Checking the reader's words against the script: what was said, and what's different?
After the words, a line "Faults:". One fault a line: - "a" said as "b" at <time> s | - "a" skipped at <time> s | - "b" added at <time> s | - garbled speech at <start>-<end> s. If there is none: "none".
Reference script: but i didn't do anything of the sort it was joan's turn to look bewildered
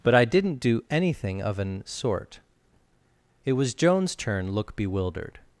but i didn't do anything of an sort it was joan's turn look bewildered
Faults:
- "the" said as "an" at 1.6 s
- "to" skipped at 4.5 s